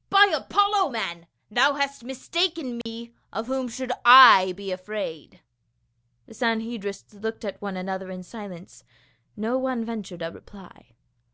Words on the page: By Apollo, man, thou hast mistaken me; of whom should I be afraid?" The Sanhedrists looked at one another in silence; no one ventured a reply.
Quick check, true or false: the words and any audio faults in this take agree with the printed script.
false